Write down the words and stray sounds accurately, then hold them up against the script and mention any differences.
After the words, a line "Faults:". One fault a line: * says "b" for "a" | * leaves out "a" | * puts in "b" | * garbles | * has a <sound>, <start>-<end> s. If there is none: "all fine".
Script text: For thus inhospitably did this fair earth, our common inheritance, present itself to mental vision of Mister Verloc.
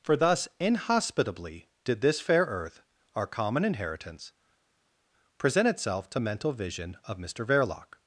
For thus inhospitably did this fair earth, our common inheritance, present itself to mental vision of Mister Verloc.
Faults:
all fine